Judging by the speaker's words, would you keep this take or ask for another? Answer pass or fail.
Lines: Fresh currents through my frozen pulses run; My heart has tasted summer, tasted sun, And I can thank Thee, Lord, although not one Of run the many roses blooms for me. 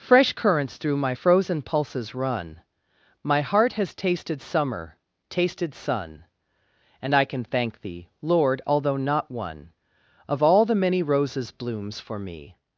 fail